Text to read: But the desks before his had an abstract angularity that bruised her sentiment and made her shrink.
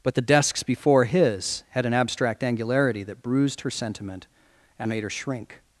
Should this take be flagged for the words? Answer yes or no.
no